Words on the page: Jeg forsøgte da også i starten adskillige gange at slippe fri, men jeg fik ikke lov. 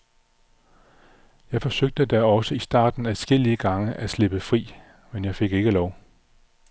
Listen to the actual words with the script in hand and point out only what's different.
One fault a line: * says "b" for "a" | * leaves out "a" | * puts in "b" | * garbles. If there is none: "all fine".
all fine